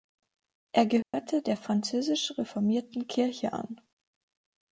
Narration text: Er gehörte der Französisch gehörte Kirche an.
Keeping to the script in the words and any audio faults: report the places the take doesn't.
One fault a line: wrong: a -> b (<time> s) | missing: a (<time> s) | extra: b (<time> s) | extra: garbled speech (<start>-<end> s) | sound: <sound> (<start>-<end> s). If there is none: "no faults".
sound: dropout (1.0-1.1 s)
wrong: gehörte -> reformierten (2.4 s)